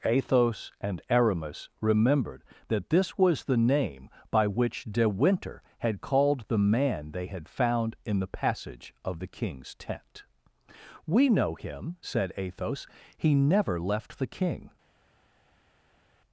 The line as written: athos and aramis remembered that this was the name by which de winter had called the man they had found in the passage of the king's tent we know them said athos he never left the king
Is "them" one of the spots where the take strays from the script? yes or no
yes